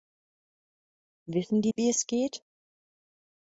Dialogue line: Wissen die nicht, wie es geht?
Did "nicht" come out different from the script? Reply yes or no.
yes